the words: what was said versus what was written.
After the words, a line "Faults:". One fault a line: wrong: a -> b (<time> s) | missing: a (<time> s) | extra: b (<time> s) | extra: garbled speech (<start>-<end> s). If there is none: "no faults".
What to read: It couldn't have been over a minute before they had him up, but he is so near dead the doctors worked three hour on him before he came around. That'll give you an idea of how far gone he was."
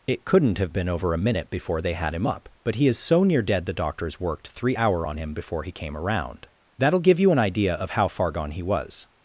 It couldn't have been over a minute before they had him up, but he is so near dead the doctors worked three hour on him before he came around. That'll give you an idea of how far gone he was."
Faults:
no faults